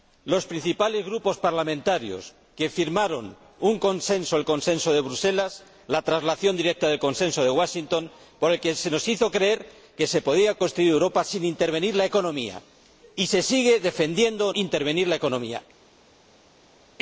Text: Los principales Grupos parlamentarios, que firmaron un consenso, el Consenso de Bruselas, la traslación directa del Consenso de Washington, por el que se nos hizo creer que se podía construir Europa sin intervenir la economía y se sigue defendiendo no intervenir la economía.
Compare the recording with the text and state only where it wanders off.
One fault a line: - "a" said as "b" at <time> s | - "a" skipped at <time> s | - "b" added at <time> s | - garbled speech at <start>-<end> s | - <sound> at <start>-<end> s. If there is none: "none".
- "no" skipped at 14.5 s